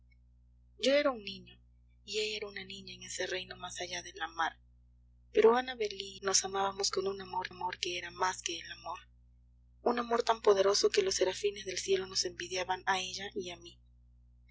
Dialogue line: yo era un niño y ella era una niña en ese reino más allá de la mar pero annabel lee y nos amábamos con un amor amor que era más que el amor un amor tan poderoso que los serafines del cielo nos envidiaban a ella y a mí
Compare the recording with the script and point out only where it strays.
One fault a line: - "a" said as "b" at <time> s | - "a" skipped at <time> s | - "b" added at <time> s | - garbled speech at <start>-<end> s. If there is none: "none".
none